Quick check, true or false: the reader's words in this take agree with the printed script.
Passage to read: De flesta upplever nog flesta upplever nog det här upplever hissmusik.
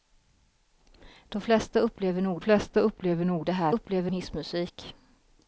true